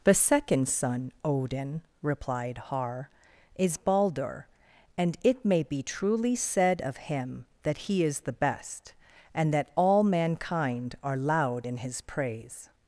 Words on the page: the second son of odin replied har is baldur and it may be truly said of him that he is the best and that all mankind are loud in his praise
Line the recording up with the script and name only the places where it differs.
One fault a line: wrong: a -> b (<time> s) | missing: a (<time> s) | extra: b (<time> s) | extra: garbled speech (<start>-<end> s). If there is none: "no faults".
missing: of (1.1 s)